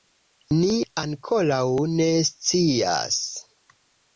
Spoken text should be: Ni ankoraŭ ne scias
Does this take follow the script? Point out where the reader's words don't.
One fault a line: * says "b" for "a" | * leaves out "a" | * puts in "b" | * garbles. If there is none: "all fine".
all fine